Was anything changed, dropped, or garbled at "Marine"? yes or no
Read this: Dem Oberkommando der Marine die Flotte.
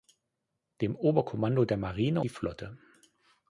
no